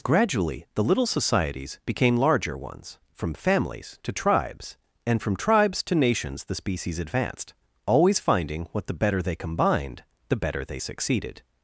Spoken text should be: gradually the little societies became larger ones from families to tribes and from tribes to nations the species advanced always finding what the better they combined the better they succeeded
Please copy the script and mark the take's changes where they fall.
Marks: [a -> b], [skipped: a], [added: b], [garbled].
gradually the little societies became larger ones from families to tribes and from tribes to nations the species advanced always finding what the better they combined the better they succeeded